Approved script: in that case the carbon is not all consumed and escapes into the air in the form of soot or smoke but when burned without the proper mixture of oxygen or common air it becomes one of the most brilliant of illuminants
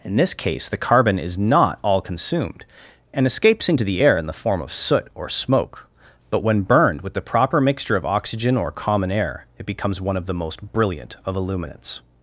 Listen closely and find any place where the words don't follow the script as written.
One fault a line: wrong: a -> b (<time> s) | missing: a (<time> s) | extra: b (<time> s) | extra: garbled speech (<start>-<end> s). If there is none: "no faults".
wrong: that -> this (0.1 s)
wrong: without -> with (7.0 s)